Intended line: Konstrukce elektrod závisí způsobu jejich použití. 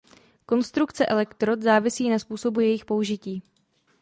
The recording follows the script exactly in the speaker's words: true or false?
false